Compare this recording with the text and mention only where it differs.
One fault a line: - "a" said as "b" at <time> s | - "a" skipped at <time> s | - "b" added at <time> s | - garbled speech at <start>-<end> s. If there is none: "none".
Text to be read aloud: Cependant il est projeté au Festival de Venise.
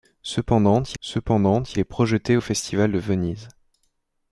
- "cependant il" added at 1.0 s